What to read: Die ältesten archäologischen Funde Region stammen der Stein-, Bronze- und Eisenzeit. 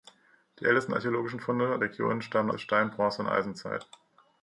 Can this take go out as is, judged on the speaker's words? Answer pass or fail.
pass